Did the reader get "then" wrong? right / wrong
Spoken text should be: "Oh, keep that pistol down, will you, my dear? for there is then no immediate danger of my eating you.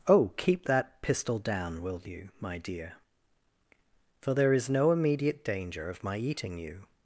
wrong